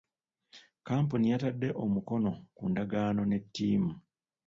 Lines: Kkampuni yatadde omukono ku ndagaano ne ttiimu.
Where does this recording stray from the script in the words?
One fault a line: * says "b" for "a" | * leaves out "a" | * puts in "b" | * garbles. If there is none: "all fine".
all fine